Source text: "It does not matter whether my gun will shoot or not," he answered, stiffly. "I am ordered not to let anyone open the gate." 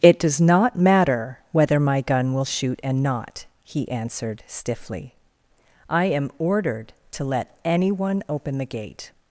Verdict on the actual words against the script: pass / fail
fail